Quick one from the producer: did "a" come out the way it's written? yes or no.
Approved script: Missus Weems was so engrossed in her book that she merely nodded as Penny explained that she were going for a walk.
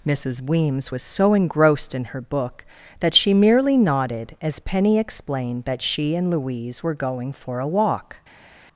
yes